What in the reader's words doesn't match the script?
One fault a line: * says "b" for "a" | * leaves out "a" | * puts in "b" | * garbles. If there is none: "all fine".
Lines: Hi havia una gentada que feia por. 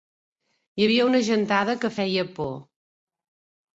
all fine